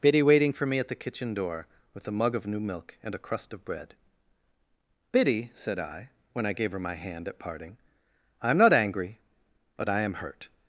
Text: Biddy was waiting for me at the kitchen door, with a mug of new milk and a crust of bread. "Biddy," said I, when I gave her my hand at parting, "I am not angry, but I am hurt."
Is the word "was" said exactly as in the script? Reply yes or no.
no